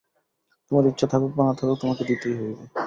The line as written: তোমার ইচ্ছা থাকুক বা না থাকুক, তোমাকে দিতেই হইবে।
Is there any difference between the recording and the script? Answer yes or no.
no